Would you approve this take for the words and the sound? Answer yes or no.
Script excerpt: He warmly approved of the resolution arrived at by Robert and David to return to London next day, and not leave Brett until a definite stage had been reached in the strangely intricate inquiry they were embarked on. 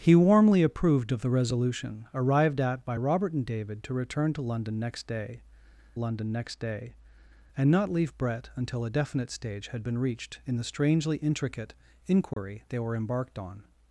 no